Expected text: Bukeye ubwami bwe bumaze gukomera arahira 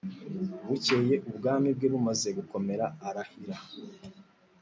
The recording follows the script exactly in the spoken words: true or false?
true